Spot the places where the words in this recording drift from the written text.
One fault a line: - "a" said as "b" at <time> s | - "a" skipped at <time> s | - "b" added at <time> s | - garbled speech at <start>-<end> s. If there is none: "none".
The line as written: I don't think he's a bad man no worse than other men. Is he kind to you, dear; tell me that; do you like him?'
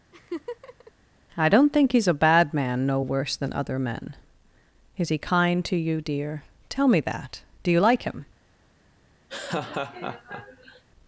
none